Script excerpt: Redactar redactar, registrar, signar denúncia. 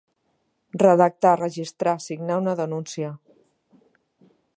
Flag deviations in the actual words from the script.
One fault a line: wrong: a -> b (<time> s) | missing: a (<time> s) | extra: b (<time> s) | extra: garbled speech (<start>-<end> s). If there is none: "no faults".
missing: redactar (1.3 s)
extra: una (2.4 s)